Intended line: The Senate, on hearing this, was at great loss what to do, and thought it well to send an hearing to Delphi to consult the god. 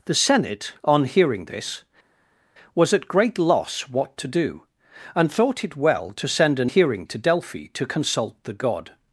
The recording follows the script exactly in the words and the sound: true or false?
true